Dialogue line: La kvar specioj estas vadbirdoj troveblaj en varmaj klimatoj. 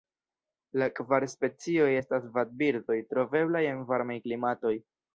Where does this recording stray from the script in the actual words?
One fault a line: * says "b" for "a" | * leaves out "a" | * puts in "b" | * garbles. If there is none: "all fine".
all fine